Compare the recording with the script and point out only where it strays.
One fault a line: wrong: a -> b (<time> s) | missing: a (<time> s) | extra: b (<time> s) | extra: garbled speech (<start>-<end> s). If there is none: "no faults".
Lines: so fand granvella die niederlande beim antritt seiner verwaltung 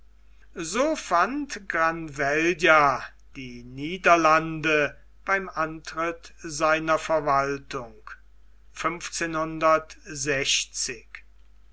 no faults